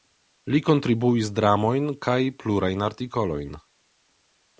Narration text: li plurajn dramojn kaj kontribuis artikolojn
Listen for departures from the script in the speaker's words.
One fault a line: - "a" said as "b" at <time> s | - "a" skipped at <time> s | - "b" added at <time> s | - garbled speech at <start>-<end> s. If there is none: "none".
- "plurajn" said as "kontribuis" at 0.7 s
- "kontribuis" said as "plurajn" at 2.5 s